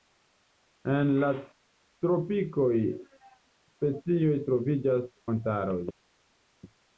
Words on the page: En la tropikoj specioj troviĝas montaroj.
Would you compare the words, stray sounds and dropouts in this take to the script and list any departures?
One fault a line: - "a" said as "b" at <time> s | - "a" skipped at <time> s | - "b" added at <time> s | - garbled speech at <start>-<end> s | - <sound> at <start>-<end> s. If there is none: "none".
none